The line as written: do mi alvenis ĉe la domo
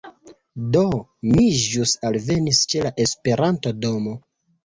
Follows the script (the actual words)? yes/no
no